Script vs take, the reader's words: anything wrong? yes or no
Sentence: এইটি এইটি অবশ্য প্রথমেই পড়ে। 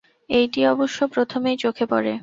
yes